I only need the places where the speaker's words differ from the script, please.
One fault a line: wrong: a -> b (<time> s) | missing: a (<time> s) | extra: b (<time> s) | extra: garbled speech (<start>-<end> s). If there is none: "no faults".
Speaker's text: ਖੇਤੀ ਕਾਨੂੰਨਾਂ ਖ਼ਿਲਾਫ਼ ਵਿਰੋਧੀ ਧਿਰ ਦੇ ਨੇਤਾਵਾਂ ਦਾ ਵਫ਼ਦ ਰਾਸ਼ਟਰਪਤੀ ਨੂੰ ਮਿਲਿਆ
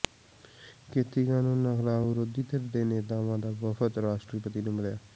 no faults